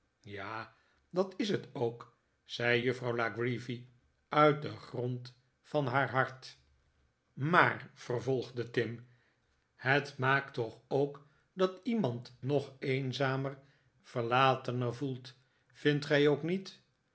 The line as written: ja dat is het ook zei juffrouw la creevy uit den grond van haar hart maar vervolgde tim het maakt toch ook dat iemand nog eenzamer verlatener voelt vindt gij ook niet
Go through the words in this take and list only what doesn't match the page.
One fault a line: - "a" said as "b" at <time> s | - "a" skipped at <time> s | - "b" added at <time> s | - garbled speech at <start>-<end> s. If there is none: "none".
none